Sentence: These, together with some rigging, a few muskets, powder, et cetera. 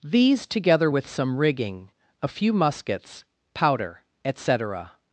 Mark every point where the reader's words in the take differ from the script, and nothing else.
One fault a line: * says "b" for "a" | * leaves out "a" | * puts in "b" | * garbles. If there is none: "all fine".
all fine